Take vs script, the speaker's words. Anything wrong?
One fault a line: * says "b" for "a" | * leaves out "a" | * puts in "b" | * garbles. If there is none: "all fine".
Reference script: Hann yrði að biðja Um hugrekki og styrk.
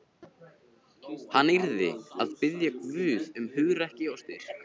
* puts in "Guð"